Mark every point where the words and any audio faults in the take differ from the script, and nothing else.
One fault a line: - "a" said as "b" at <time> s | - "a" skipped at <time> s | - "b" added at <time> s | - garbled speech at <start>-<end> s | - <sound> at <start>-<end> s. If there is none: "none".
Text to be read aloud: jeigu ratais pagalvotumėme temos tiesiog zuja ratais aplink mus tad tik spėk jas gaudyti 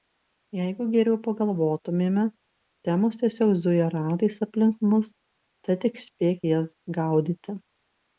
- "ratais" said as "geriau" at 0.9 s